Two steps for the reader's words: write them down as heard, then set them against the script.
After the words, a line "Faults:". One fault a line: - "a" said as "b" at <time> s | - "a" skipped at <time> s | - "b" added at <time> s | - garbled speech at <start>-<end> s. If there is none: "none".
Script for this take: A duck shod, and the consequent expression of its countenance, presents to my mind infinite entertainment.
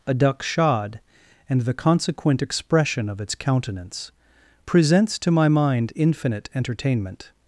A duck shod, and the consequent expression of its countenance, presents to my mind infinite entertainment.
Faults:
none